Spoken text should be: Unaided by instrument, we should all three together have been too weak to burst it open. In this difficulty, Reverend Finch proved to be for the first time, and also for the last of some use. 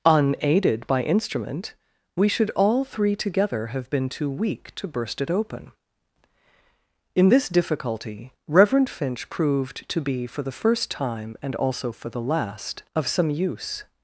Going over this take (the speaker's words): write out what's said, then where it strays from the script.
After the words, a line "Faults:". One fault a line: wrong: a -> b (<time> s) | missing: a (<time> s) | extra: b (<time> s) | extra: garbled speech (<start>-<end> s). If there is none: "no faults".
Unaided by instrument, we should all three together have been too weak to burst it open. In this difficulty, Reverend Finch proved to be for the first time, and also for the last of some use.
Faults:
no faults